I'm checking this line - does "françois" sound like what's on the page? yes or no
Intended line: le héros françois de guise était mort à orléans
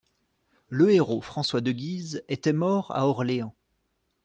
yes